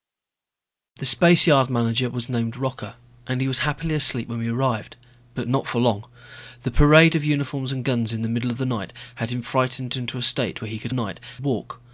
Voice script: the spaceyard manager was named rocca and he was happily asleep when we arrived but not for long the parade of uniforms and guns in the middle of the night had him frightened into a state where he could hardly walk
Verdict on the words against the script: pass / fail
fail